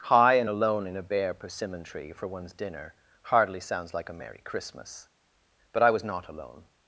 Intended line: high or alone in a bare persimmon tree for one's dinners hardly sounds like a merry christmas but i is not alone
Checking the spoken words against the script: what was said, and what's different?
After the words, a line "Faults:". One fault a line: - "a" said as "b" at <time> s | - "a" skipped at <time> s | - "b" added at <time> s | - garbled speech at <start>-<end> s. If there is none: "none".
high and alone in a bare persimmon tree for one's dinner hardly sounds like a merry christmas but i was not alone
Faults:
- "or" said as "and" at 0.3 s
- "dinners" said as "dinner" at 2.5 s
- "is" said as "was" at 5.9 s